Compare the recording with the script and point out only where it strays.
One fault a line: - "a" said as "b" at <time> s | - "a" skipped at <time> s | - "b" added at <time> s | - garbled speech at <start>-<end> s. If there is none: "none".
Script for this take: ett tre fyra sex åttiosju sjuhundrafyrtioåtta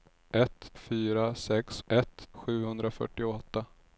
- "tre" skipped at 0.7 s
- "åttiosju" said as "ett" at 1.9 s